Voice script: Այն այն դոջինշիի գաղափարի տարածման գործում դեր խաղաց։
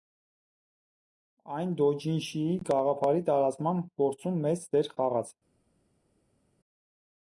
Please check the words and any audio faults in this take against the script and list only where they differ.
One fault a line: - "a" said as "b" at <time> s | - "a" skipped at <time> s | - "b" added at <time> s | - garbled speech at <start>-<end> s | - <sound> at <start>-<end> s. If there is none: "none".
- "այն" skipped at 1.8 s
- "մեծ" added at 4.5 s